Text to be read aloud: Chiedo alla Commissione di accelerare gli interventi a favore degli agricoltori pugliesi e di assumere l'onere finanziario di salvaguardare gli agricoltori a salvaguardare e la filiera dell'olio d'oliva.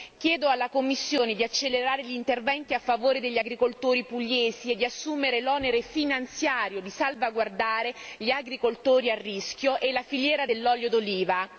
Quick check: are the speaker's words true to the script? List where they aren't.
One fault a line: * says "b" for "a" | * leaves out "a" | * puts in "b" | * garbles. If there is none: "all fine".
* says "rischio" for "salvaguardare"